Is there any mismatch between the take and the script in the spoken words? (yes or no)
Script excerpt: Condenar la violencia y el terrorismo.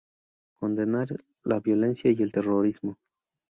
no